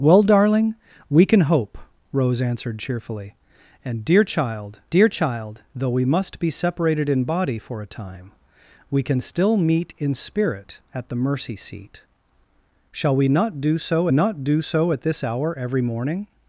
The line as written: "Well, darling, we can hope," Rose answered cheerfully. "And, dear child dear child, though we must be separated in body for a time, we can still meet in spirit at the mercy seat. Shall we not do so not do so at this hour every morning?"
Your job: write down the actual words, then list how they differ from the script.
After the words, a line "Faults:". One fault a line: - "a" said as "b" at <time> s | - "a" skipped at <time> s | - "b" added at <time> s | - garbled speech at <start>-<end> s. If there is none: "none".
"Well, darling, we can hope," Rose answered cheerfully. "And, dear child dear child, though we must be separated in body for a time, we can still meet in spirit at the mercy seat. Shall we not do so not do so at this hour every morning?"
Faults:
none